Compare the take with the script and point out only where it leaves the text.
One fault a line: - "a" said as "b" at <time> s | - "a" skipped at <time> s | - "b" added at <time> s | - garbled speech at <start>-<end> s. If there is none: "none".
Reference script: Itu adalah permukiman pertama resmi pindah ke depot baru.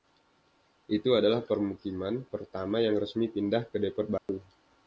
- "yang" added at 2.8 s